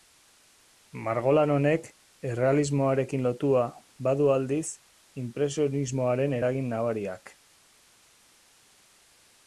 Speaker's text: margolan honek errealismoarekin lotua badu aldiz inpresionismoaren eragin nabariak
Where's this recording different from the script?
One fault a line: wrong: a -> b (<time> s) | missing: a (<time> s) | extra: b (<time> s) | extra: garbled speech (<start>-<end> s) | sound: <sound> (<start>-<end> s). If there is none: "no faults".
no faults